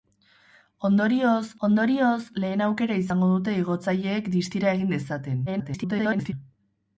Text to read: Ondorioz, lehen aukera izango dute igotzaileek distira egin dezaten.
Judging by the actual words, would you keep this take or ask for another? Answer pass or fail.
fail